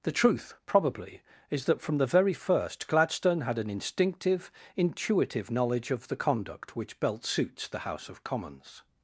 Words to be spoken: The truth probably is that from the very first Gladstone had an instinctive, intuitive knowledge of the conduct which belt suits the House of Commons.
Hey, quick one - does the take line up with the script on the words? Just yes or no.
yes